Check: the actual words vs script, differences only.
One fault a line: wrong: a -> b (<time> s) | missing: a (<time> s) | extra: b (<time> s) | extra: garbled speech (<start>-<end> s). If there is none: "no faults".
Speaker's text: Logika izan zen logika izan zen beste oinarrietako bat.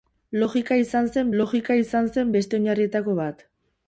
no faults